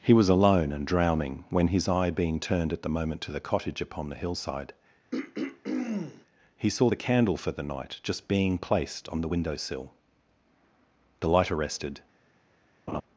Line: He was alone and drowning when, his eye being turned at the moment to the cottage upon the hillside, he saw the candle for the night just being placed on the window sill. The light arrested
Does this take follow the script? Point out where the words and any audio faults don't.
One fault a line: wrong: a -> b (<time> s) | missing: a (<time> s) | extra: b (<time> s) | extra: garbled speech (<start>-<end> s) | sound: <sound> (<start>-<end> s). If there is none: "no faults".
sound: throat clearing (5.1-6.3 s)
sound: laugh (12.9-13.0 s)